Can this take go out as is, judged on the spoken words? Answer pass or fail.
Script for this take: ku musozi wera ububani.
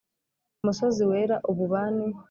pass